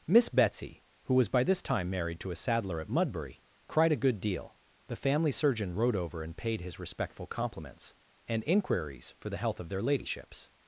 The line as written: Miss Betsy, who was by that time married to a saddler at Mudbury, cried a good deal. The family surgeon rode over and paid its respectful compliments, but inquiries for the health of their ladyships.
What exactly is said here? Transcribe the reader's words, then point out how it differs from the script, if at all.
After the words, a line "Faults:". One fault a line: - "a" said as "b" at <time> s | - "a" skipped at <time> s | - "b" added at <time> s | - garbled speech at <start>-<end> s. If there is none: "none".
Miss Betsy, who was by this time married to a saddler at Mudbury, cried a good deal. The family surgeon rode over and paid his respectful compliments, and inquiries for the health of their ladyships.
Faults:
- "that" said as "this" at 1.4 s
- "its" said as "his" at 6.6 s
- "but" said as "and" at 8.3 s